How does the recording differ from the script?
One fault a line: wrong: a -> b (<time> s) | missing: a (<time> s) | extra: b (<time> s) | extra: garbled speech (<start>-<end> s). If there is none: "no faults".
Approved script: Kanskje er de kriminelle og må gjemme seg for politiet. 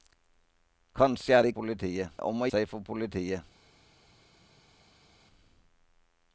wrong: kriminelle -> politiet (1.5 s)
missing: gjemme (2.5 s)